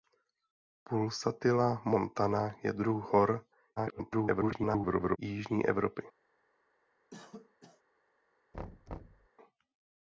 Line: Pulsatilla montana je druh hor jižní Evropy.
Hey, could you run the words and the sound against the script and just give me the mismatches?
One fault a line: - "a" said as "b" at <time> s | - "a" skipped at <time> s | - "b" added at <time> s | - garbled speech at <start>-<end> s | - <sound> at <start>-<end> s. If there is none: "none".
- garbled speech at 3.8-5.2 s
- cough at 7.1-7.8 s
- thud at 8.5-9.3 s